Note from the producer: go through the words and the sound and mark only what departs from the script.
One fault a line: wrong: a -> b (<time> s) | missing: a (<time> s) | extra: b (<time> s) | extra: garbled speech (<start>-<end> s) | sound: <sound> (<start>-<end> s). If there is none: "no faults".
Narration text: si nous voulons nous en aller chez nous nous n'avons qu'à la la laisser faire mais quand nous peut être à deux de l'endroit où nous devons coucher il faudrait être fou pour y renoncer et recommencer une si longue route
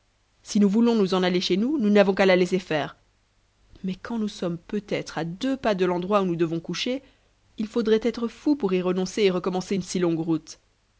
missing: la (2.3 s)
extra: sommes (4.3 s)
extra: pas (5.6 s)